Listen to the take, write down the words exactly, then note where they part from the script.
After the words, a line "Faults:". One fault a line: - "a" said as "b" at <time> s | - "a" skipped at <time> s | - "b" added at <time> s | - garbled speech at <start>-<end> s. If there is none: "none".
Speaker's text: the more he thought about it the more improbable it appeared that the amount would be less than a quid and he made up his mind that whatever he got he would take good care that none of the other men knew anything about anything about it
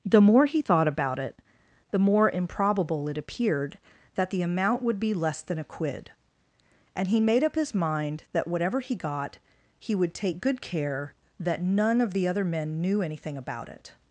the more he thought about it the more improbable it appeared that the amount would be less than a quid and he made up his mind that whatever he got he would take good care that none of the other men knew anything about it
Faults:
- "anything about" skipped at 13.7 s